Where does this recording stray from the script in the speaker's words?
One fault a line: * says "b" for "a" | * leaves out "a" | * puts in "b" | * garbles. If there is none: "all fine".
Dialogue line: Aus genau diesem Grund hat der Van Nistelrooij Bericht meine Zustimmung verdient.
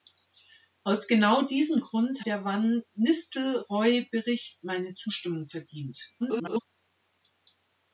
* leaves out "hat"
* garbles